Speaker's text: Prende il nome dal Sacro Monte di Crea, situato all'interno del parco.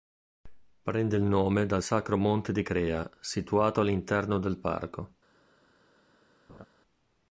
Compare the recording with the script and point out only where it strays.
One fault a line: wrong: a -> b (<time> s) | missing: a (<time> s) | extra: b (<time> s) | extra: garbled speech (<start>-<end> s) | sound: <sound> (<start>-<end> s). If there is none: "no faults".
sound: laugh (6.5-6.7 s)